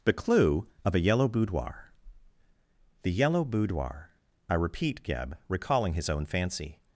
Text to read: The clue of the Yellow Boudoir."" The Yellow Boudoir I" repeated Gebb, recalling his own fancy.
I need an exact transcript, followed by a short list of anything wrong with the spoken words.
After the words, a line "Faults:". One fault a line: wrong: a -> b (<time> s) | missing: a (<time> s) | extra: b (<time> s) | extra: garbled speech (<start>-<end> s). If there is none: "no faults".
The clue of a Yellow Boudoir."" The Yellow Boudoir I" repeat Gebb, recalling his own fancy.
Faults:
wrong: the -> a (0.9 s)
wrong: repeated -> repeat (4.5 s)